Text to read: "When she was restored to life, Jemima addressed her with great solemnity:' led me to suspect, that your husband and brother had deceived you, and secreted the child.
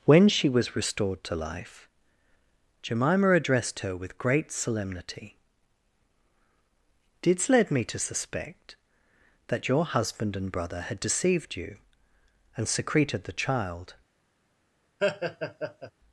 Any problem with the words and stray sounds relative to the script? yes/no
yes